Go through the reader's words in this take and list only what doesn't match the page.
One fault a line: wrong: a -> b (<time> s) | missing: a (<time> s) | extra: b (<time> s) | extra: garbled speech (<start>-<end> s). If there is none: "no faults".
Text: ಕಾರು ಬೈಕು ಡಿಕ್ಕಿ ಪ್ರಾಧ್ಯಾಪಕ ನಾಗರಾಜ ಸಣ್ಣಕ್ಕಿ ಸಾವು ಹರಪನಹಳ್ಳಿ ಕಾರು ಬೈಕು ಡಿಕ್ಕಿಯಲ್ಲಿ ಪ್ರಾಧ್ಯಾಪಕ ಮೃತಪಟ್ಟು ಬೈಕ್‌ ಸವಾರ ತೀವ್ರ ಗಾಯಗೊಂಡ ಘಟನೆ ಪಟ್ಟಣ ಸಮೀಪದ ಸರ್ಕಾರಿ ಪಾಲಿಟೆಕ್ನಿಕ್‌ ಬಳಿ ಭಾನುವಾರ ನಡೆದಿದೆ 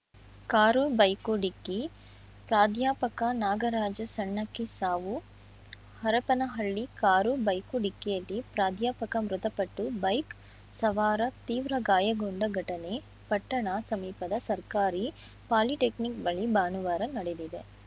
no faults